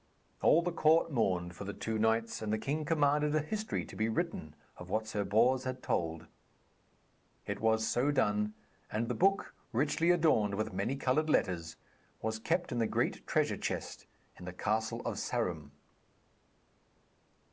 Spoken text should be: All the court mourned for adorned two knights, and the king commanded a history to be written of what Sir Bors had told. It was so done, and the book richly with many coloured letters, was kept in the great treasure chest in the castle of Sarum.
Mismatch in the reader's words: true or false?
true